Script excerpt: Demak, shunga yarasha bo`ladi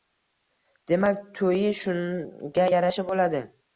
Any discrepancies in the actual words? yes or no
yes